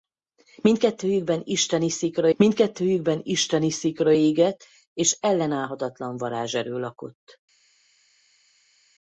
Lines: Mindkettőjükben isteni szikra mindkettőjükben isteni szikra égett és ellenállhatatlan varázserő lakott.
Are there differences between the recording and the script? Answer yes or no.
no